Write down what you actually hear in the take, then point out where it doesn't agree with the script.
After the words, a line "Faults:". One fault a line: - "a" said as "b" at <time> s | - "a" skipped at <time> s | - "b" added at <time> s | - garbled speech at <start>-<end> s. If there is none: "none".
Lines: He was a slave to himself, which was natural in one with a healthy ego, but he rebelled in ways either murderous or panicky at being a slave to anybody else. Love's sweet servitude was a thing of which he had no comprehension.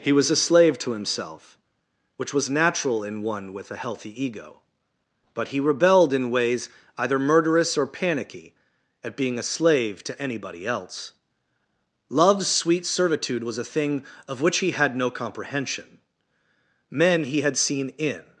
He was a slave to himself, which was natural in one with a healthy ego, but he rebelled in ways either murderous or panicky at being a slave to anybody else. Love's sweet servitude was a thing of which he had no comprehension. Men he had seen in
Faults:
- "Men he had seen in" added at 16.9 s